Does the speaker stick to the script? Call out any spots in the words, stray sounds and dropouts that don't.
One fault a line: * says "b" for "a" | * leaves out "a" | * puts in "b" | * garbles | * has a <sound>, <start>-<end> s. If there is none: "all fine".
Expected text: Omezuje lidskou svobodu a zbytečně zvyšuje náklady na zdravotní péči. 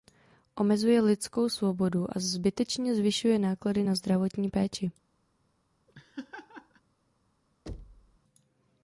* has a laugh, 5.9-6.8 s
* has a thud, 7.7-8.2 s